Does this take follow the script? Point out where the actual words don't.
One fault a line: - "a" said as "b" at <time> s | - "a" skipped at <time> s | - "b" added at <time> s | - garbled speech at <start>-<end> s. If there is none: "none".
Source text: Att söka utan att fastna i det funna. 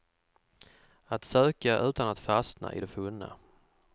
none